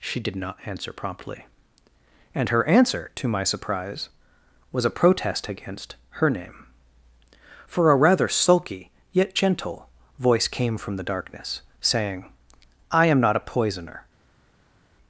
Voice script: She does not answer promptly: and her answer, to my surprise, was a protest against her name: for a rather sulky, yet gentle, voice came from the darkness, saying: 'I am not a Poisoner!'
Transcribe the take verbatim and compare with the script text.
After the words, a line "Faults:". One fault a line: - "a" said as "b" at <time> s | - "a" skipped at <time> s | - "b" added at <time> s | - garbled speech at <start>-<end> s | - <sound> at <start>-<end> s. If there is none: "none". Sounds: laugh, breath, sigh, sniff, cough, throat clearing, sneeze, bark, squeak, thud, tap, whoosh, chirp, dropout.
She did not answer promptly: and her answer, to my surprise, was a protest against her name: for a rather sulky, yet gentle, voice came from the darkness, saying: 'I am not a Poisoner!'
Faults:
- "does" said as "did" at 0.2 s